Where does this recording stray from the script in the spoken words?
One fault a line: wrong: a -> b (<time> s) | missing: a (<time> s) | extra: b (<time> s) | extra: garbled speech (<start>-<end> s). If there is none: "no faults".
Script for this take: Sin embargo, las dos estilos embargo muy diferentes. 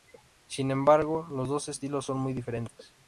wrong: las -> los (1.3 s)
wrong: embargo -> son (2.1 s)